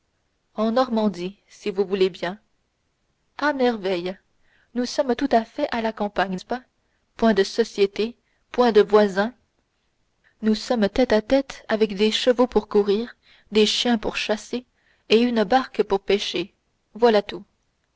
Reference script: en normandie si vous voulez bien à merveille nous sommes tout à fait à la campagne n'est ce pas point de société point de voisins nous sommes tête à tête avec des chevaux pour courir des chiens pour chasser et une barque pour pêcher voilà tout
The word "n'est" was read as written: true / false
false